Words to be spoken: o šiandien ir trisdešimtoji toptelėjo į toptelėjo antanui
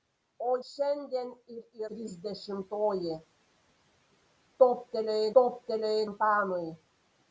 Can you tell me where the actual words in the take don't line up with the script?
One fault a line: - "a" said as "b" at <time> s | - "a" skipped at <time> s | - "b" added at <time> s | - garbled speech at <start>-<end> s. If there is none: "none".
none